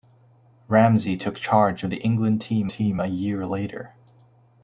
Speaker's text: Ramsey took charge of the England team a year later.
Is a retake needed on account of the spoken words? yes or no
yes